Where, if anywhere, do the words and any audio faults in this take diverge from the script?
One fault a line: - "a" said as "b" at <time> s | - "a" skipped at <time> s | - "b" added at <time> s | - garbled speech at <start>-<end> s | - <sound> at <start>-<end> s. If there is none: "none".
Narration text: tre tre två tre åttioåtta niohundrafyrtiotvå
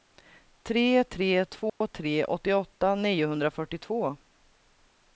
- dropout at 1.7-1.8 s